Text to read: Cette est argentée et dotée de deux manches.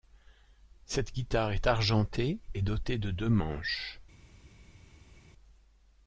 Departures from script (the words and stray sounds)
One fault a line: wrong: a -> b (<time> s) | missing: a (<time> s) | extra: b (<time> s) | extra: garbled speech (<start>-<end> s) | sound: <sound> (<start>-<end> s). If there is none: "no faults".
extra: guitare (1.1 s)